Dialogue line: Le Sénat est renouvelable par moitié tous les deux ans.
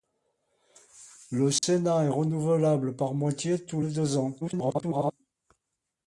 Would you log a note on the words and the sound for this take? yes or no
yes